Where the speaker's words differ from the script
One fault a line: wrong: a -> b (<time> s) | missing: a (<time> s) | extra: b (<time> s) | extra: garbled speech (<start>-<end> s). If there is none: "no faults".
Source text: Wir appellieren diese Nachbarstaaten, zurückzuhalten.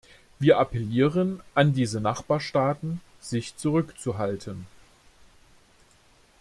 extra: an (1.5 s)
extra: sich (3.2 s)